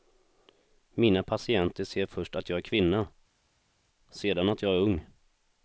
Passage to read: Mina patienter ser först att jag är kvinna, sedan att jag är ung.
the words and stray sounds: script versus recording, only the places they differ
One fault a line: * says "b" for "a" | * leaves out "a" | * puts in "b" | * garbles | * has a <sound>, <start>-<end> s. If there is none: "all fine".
all fine